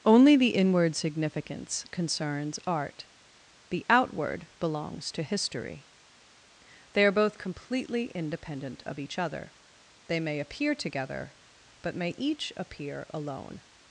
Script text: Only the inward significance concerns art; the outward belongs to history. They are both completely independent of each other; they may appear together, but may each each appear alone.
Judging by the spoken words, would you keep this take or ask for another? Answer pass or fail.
fail